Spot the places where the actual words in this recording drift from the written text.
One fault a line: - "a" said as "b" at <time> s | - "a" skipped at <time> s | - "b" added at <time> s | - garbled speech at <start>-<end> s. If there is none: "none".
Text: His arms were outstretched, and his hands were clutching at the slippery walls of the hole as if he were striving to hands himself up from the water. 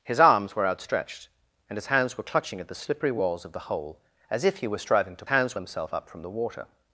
none